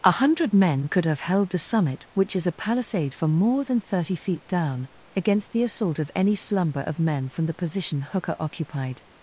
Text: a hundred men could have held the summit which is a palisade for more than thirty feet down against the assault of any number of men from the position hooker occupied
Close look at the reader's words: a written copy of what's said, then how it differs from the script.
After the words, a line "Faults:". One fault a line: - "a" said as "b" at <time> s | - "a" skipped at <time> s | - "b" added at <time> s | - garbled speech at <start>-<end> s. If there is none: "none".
a hundred men could have held the summit which is a palisade for more than thirty feet down against the assault of any slumber of men from the position hooker occupied
Faults:
- "number" said as "slumber" at 6.4 s